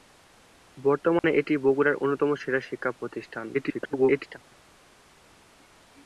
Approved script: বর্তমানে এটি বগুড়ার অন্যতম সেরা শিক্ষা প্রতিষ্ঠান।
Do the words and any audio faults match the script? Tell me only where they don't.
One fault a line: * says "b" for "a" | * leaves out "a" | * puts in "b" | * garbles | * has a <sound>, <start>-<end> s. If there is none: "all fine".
* has a dropout, 1.2-1.2 s
* garbles